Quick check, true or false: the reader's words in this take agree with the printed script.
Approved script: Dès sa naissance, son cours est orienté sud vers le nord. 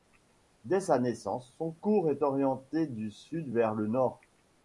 false